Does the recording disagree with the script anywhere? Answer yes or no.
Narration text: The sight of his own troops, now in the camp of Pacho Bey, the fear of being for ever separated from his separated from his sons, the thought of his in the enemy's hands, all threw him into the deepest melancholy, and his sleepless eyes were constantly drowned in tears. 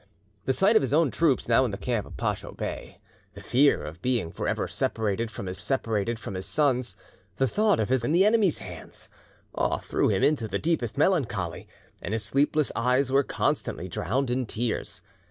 no